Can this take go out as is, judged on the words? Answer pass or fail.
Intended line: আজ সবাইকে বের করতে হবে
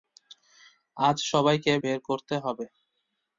pass